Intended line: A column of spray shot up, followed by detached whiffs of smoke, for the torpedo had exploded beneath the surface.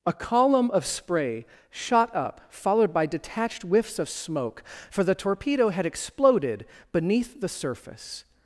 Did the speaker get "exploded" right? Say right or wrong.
right